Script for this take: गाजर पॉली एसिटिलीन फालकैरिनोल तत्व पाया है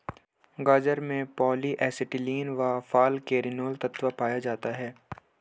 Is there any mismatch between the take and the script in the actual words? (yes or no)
yes